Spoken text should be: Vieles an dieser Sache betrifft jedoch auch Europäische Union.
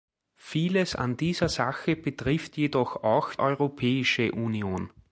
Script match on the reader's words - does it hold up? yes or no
yes